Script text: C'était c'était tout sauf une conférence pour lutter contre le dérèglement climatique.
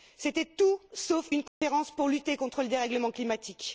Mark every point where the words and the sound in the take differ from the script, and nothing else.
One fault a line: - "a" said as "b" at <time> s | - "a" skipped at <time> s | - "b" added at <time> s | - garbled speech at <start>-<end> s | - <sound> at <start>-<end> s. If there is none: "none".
- "c'était" skipped at 0.5 s
- dropout at 1.5-1.6 s